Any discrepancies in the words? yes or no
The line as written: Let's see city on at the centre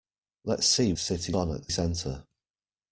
no